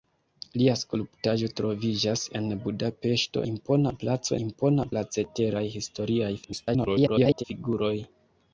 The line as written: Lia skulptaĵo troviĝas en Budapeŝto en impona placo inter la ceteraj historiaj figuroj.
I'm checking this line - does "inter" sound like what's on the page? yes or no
no